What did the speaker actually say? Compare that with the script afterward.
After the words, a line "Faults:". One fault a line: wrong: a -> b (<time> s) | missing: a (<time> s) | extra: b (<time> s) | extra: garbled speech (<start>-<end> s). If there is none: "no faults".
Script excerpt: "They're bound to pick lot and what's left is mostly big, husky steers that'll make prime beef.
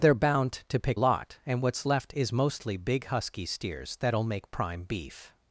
"They're bound to pick lot and what's left is mostly big, husky steers that'll make prime beef.
Faults:
no faults